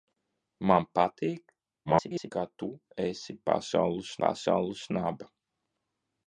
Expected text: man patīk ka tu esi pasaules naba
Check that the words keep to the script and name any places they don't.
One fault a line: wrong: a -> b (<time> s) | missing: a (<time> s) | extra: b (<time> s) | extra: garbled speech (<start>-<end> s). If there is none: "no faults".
extra: garbled speech (1.8-2.3 s)
extra: pasaules (4.2 s)